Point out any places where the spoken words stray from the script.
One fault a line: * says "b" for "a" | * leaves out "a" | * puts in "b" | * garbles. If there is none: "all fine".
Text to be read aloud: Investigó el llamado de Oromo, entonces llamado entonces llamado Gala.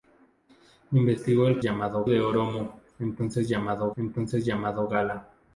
all fine